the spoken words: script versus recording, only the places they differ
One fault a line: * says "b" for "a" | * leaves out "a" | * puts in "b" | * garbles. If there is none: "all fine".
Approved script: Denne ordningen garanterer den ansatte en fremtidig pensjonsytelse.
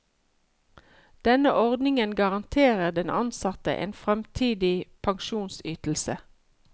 all fine